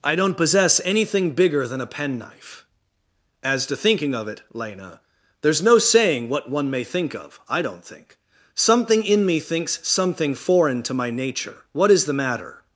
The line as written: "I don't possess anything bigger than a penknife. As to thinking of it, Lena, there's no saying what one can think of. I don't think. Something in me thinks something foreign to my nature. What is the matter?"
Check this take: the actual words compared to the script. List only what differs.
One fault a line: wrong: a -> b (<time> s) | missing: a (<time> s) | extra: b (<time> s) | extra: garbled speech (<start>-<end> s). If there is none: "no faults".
wrong: can -> may (6.7 s)